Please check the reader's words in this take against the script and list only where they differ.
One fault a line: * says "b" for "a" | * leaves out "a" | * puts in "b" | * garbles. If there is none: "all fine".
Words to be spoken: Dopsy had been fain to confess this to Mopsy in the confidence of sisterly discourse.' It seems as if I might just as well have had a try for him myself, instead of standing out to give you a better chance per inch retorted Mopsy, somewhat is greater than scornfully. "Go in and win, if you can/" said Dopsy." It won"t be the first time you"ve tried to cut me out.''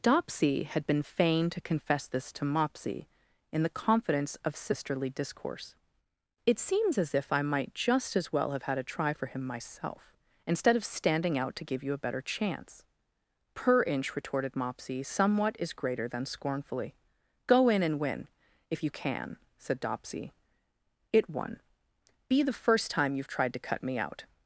* says "won" for "won"t"